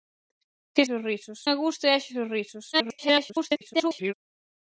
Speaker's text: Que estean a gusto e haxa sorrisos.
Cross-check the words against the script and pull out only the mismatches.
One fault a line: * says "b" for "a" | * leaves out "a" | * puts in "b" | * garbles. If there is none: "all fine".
* says "sorrisos" for "estean"
* garbles